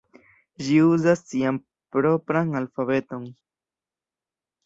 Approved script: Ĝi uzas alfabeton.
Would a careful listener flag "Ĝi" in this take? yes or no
no